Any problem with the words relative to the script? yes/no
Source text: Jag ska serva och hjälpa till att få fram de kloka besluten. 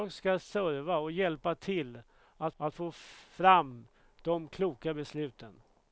yes